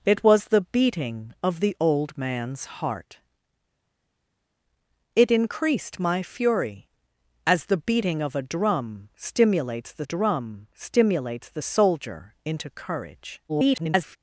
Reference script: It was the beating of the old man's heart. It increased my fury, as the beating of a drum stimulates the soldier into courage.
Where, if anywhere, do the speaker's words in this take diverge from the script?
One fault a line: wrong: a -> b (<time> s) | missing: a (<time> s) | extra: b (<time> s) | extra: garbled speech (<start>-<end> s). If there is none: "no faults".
extra: drum stimulates the (10.0 s)
extra: garbled speech (13.5-14.2 s)